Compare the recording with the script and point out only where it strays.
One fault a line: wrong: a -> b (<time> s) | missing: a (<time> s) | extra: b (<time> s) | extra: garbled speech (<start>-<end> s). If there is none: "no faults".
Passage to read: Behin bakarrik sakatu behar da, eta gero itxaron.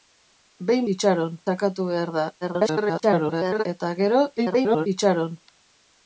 wrong: bakarrik -> itxaron (1.0 s)
extra: garbled speech (2.4-3.6 s)
extra: garbled speech (4.4-4.9 s)